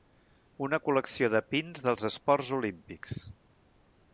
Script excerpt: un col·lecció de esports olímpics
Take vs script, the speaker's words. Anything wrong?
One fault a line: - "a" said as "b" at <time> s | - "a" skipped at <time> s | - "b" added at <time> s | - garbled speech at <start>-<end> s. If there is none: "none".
- "un" said as "una" at 0.7 s
- "pins dels" added at 1.6 s